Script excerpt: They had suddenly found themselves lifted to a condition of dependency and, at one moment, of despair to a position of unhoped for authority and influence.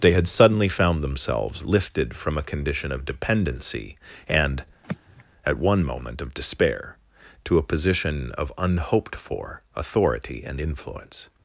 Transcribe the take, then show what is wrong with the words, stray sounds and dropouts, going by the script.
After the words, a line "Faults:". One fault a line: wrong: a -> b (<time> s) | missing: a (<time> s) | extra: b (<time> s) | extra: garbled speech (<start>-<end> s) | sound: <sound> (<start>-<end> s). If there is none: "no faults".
They had suddenly found themselves lifted from a condition of dependency and, at one moment, of despair to a position of unhoped for authority and influence.
Faults:
wrong: to -> from (2.1 s)
sound: sigh (4.8-5.2 s)